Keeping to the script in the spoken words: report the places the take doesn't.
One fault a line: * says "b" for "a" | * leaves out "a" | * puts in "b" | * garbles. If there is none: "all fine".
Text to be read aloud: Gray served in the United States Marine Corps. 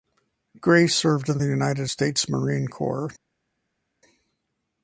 all fine